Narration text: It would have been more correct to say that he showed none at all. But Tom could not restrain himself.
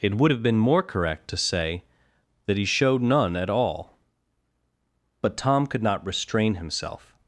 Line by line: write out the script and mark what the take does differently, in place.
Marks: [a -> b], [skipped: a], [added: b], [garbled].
It would have been more correct to say that he showed none at all. But Tom could not restrain himself.